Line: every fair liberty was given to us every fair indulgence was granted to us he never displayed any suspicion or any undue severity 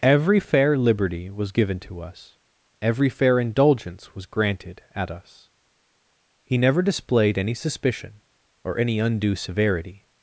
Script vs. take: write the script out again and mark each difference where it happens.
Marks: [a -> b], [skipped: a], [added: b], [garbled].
every fair liberty was given to us every fair indulgence was granted [to -> at] us he never displayed any suspicion or any undue severity